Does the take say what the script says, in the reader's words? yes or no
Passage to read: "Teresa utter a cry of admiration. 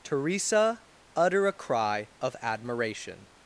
yes